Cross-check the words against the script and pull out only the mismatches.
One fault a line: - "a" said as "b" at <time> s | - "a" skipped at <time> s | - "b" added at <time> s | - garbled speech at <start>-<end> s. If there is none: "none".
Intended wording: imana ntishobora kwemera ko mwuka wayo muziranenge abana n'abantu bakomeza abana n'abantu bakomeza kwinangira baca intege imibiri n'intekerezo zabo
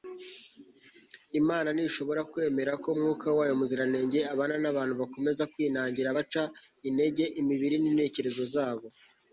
- "abana n'abantu bakomeza" skipped at 5.4 s